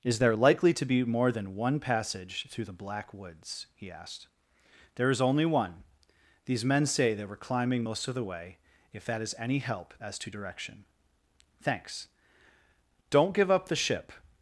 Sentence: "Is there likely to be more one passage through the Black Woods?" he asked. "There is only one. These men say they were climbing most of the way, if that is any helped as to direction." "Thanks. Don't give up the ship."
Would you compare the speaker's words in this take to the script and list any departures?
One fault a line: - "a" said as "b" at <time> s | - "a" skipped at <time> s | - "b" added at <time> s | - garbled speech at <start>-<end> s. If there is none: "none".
- "than" added at 1.3 s
- "helped" said as "help" at 9.6 s